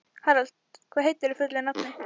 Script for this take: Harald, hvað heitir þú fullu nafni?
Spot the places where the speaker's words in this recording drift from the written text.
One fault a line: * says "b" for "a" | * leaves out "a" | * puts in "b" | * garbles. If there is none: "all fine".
all fine